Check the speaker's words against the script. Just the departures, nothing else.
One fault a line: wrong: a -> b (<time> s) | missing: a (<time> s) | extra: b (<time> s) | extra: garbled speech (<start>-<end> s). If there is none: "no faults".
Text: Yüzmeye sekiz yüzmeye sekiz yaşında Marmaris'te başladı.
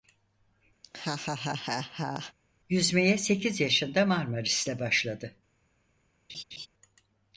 missing: yüzmeye sekiz (3.6 s)